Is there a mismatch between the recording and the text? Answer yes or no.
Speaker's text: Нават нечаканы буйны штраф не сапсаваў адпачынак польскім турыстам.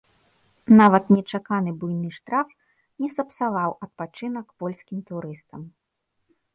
no